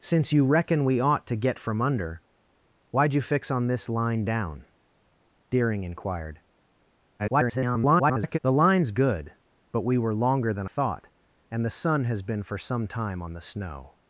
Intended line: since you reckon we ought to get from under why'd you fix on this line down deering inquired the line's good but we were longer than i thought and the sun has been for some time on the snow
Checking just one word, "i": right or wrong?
wrong